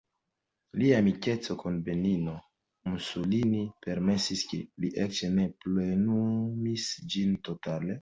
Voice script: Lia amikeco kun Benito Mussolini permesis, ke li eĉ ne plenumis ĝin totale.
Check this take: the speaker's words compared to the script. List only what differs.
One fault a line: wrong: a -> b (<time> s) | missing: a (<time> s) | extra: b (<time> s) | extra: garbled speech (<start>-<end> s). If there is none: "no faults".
no faults